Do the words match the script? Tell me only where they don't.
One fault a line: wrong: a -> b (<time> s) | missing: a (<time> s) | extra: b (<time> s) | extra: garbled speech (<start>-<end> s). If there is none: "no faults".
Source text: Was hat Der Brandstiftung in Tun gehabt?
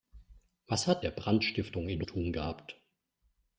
no faults